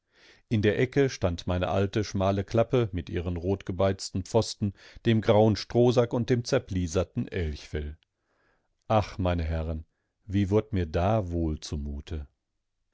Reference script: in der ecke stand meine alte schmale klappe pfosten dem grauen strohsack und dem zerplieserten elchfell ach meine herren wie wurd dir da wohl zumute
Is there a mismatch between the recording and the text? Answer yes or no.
yes